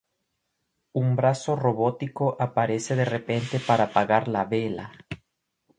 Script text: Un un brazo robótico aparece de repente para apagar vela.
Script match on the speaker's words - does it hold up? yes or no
no